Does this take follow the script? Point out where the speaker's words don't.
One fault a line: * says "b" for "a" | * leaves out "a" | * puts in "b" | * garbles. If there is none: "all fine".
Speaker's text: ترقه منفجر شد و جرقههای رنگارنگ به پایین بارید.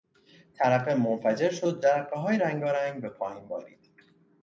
all fine